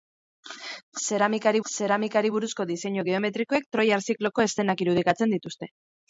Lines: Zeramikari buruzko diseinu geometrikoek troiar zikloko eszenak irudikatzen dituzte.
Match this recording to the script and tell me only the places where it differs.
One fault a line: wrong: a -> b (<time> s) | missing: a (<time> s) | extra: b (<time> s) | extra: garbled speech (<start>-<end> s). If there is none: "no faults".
extra: zeramikari (1.7 s)